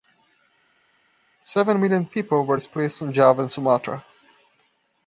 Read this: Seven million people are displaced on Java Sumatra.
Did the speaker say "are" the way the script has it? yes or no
no